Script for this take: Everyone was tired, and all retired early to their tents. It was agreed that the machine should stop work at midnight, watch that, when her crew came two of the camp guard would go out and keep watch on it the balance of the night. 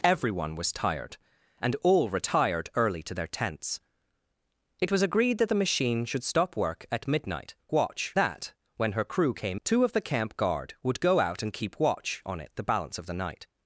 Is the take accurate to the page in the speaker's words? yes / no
yes